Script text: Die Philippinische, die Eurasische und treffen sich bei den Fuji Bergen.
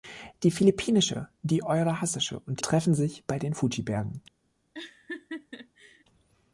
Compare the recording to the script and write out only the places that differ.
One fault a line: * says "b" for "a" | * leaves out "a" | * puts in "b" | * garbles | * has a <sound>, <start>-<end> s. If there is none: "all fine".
* has a laugh, 4.7-6.0 s